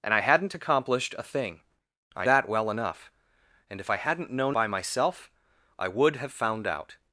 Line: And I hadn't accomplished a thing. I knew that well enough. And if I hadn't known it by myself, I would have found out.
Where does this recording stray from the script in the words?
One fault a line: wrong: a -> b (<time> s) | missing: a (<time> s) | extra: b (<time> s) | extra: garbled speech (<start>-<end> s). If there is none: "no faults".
missing: knew (2.3 s)
missing: it (4.6 s)